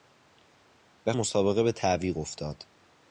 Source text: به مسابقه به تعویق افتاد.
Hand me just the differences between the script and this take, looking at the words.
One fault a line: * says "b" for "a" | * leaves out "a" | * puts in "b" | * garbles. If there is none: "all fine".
all fine